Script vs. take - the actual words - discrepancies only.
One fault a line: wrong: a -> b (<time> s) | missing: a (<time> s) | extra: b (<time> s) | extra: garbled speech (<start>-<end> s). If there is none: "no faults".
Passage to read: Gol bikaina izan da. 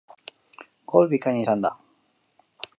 no faults